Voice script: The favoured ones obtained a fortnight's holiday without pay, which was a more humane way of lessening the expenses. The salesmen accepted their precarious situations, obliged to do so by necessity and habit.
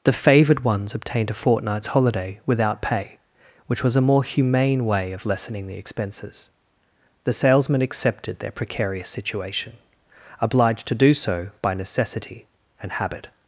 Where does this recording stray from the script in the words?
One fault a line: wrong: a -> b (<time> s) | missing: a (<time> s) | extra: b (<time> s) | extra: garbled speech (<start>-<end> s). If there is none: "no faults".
wrong: situations -> situation (9.1 s)